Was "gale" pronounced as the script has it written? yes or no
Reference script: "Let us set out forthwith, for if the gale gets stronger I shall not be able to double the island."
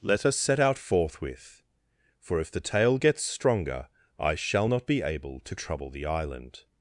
no